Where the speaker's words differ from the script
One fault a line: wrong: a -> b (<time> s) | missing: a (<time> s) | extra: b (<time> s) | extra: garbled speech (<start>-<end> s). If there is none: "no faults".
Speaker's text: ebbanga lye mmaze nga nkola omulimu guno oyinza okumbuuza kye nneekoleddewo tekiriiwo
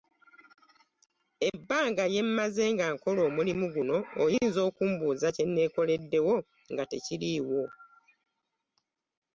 extra: nga (6.7 s)